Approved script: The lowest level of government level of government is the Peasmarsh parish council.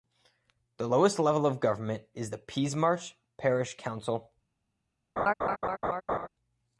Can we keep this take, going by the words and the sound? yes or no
no